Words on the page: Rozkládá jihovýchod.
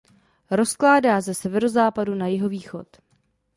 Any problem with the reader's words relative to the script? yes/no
yes